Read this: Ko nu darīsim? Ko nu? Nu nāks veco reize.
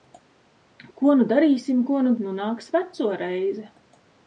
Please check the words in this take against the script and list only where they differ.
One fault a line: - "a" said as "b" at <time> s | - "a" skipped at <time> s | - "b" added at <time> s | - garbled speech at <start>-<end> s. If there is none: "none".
none